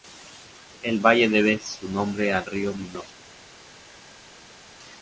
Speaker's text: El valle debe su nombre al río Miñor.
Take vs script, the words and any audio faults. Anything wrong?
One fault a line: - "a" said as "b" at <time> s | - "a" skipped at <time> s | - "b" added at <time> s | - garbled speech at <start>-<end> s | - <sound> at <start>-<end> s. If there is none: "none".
none